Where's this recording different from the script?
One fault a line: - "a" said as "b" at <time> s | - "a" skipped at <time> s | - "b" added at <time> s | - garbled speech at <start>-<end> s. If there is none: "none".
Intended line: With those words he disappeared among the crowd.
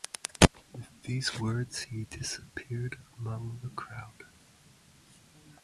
- "those" said as "these" at 1.0 s